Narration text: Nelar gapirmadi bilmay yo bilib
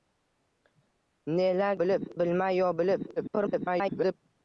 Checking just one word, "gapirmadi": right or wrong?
wrong